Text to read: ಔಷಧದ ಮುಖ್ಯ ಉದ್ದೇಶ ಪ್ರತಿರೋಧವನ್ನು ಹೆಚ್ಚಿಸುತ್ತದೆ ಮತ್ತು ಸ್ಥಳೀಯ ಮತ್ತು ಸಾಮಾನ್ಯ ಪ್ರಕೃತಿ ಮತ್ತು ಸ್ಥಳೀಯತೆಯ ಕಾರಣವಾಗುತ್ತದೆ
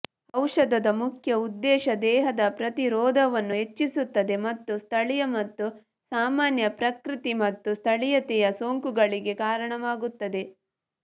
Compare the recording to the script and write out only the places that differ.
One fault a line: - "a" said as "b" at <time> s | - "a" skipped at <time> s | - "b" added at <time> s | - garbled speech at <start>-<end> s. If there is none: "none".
- "ದೇಹದ" added at 2.0 s
- "ಸೋಂಕುಗಳಿಗೆ" added at 8.6 s